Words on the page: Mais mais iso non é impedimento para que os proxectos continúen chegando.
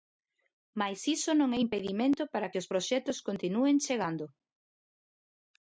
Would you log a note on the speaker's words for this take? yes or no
yes